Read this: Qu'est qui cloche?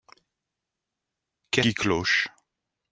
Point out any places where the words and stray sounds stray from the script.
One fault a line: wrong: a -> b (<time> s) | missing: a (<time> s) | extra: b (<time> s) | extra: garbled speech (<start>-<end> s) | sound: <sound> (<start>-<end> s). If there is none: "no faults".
no faults